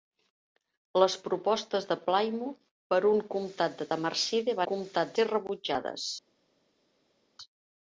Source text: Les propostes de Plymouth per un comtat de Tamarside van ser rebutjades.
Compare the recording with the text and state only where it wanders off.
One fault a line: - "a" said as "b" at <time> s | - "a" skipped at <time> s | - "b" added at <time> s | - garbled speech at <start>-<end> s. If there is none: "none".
- "van" said as "comtat" at 4.7 s